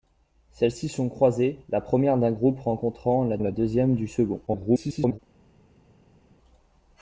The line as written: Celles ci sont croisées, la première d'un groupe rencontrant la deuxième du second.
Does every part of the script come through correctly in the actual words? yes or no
no